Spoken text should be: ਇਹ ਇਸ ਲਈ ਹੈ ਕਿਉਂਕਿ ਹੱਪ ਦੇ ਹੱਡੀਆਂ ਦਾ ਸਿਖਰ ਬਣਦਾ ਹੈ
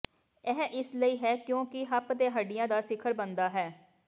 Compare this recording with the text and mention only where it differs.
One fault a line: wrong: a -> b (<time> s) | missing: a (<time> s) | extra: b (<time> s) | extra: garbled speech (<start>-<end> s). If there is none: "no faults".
no faults